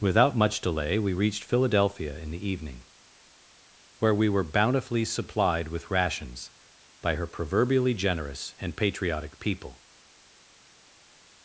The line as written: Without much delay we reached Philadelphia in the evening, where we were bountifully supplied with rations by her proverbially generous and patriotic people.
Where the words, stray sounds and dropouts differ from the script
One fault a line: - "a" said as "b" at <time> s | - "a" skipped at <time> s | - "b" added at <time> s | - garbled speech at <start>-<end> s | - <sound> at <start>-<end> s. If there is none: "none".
none